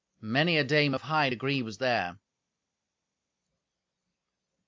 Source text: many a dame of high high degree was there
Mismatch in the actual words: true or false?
true